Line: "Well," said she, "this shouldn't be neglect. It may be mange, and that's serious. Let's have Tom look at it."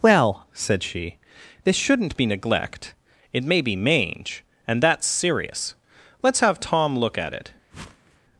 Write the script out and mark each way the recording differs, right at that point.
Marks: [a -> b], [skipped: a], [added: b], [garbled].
"Well," said she, "this shouldn't be neglect. It may be mange, and that's serious. Let's have Tom look at it."